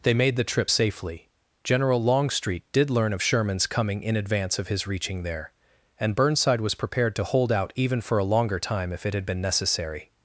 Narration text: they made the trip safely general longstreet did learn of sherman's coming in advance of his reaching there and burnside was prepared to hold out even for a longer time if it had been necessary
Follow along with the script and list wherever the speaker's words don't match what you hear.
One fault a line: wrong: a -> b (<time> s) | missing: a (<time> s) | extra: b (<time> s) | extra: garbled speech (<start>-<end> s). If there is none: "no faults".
no faults